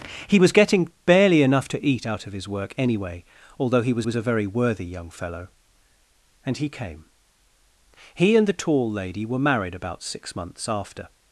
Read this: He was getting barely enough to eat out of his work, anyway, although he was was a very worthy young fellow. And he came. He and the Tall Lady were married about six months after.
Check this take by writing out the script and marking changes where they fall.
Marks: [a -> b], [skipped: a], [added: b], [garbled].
He was getting barely enough to eat out of his work, anyway, although he was was a very worthy young fellow. And he came. He and the Tall Lady were married about six months after.